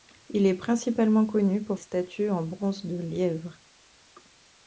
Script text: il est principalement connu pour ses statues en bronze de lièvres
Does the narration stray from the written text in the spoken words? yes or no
yes